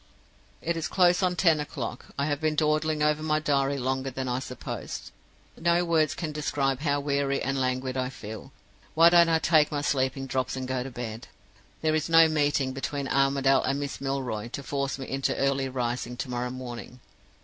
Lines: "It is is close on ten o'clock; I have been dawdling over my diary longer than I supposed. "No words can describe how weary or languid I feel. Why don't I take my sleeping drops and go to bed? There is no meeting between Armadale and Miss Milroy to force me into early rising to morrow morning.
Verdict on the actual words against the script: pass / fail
fail